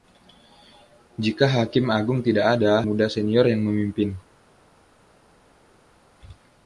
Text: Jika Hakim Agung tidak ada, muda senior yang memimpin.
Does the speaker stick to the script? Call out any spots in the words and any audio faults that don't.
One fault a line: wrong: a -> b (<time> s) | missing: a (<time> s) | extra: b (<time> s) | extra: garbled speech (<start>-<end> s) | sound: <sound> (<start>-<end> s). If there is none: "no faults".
no faults